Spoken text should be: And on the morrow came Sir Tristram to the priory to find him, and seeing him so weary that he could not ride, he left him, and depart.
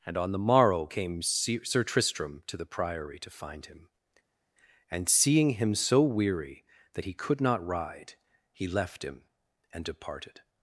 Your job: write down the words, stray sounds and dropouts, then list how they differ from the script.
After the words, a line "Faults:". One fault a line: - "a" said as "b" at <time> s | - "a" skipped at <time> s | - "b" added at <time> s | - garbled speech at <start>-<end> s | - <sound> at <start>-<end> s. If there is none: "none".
And on the morrow came Sir Tristram to the priory to find him, and seeing him so weary that he could not ride, he left him, and departed.
Faults:
- "depart" said as "departed" at 9.9 s